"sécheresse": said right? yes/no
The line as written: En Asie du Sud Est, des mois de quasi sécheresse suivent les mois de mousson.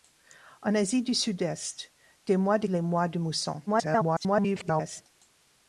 no